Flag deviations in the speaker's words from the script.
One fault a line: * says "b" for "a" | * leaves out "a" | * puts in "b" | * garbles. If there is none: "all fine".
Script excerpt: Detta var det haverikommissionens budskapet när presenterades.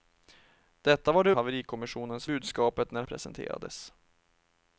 all fine